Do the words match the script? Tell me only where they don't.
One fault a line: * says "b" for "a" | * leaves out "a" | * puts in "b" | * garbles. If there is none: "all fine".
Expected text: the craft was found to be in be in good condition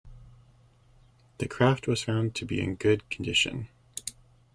* leaves out "be in"